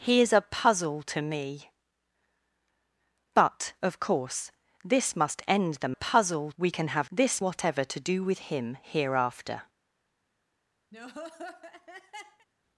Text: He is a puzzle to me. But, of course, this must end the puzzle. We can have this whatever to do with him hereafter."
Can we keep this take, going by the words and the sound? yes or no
no